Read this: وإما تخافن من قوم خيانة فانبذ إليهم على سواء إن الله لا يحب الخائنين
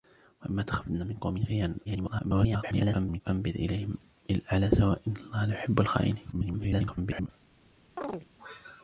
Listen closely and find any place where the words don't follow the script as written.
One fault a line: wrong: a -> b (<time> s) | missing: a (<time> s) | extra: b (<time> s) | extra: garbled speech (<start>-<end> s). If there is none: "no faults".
extra: garbled speech (1.8-3.2 s)
extra: garbled speech (6.3-7.3 s)